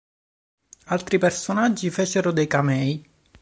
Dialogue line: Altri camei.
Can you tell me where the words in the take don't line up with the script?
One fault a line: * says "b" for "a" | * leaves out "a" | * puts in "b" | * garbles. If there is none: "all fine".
* puts in "personaggi fecero dei"